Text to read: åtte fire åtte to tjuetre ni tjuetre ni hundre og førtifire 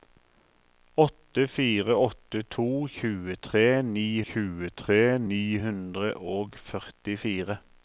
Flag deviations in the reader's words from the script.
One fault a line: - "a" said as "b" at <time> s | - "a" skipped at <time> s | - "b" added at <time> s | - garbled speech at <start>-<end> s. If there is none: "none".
none